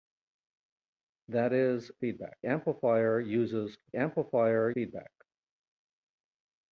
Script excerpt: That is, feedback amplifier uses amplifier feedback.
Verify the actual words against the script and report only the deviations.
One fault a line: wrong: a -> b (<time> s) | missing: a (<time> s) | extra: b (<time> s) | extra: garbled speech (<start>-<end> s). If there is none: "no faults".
no faults